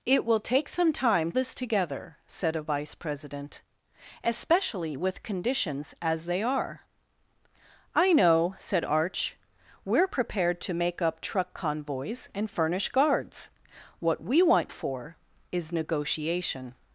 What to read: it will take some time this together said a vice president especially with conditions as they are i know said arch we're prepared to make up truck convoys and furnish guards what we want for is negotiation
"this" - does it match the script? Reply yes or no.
yes